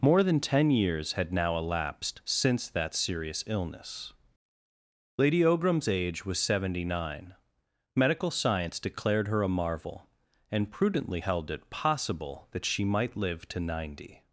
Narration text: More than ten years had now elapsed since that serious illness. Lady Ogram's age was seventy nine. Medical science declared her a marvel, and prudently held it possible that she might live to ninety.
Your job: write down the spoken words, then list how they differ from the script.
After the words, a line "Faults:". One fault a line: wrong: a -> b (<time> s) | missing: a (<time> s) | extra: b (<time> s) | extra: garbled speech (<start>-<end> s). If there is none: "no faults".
More than ten years had now elapsed since that serious illness. Lady Ogram's age was seventy nine. Medical science declared her a marvel, and prudently held it possible that she might live to ninety.
Faults:
no faults